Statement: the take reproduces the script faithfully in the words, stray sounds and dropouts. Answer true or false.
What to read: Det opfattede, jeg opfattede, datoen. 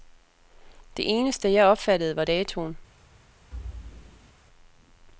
false